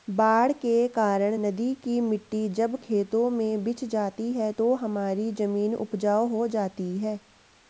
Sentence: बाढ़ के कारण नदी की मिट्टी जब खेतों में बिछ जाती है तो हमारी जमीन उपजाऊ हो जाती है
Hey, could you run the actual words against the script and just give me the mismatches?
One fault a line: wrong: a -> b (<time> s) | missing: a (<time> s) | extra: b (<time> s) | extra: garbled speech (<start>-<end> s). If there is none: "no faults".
no faults